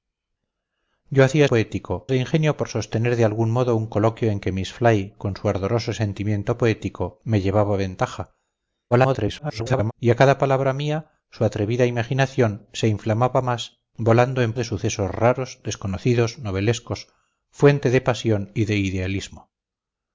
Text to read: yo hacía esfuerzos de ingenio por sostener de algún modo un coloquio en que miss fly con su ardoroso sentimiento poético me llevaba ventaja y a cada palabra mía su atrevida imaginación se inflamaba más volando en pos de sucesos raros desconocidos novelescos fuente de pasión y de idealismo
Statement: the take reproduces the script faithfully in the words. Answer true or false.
false